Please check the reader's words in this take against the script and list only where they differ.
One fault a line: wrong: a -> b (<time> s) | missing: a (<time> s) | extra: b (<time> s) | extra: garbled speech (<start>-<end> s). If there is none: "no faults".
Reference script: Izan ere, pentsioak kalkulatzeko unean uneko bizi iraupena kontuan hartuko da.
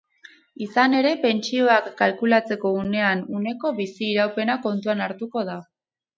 no faults